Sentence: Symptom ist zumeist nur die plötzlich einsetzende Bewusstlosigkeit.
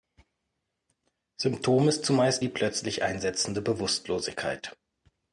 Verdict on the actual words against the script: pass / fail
fail